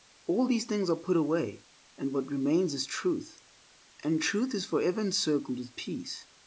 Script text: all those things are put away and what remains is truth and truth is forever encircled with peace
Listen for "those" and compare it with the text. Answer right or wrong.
wrong